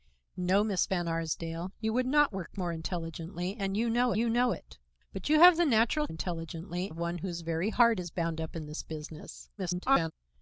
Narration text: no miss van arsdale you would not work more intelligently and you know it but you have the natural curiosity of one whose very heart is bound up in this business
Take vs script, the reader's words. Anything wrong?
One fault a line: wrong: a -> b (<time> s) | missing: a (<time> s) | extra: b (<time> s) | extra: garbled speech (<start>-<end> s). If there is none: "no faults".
extra: you know (4.2 s)
wrong: curiosity -> intelligently (6.1 s)
extra: garbled speech (9.6-10.1 s)